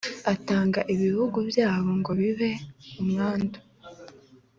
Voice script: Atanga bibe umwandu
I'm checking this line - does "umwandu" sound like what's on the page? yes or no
yes